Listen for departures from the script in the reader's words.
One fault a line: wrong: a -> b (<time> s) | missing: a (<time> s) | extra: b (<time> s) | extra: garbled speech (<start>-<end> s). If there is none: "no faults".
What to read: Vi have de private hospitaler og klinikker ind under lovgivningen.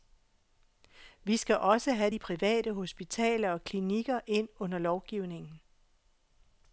extra: skal også (1.4 s)